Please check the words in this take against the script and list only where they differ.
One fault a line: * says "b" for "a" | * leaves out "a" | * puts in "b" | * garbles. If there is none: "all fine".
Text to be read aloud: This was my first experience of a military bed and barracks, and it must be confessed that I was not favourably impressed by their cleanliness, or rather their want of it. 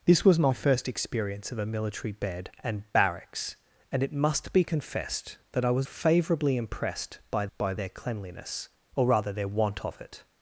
* leaves out "not"
* puts in "by"